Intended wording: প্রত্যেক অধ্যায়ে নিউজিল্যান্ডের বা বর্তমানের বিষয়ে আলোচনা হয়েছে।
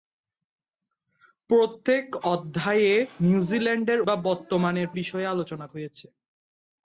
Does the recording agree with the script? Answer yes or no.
yes